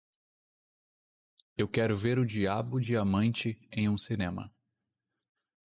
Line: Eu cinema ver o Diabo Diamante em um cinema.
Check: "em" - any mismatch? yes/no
no